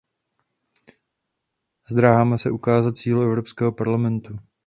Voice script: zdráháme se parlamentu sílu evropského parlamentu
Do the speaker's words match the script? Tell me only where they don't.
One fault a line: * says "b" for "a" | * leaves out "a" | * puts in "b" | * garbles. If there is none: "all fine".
* says "ukázat" for "parlamentu"